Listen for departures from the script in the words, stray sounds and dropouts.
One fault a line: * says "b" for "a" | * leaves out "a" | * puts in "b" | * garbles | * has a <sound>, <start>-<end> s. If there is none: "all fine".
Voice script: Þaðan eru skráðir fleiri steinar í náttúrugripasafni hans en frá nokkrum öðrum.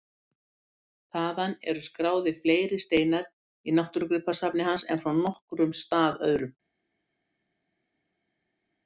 * puts in "stað"